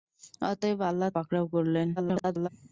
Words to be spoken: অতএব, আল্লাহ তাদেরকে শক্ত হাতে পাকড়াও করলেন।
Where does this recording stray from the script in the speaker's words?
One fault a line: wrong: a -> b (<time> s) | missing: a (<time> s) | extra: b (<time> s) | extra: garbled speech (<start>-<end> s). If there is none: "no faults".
missing: তাদেরকে শক্ত হাতে (1.1 s)
extra: garbled speech (2.0-2.5 s)